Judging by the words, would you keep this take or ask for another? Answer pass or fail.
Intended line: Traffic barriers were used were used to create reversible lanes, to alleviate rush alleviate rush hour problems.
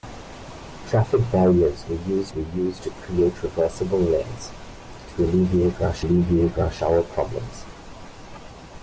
pass